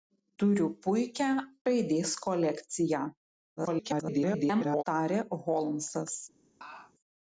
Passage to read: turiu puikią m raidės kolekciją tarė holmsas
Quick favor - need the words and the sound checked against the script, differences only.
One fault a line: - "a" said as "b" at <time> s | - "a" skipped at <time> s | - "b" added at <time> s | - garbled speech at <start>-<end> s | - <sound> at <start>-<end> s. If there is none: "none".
- "m" skipped at 1.3 s
- garbled speech at 3.6-4.8 s
- laugh at 6.6-6.9 s